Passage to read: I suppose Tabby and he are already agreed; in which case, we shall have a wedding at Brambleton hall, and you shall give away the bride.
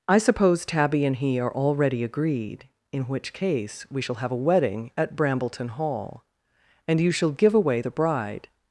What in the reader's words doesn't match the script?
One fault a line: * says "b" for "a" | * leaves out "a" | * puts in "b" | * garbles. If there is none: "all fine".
all fine